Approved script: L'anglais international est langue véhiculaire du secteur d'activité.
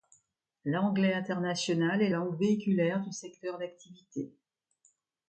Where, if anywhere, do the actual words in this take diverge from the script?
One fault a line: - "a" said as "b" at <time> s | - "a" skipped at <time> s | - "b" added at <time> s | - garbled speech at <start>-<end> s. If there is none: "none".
none